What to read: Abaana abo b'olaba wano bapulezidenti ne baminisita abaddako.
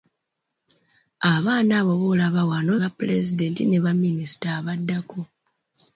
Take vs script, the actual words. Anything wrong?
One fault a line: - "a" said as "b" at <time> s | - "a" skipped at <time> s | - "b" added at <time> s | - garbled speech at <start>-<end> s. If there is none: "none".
none